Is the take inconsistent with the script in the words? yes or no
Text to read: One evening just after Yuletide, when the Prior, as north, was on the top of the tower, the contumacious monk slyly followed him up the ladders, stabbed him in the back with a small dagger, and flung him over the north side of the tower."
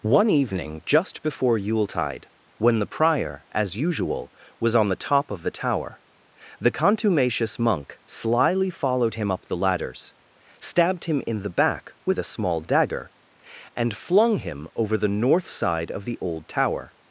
yes